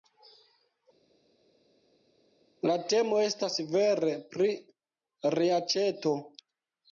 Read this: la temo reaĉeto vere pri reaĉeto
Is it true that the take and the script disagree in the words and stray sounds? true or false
true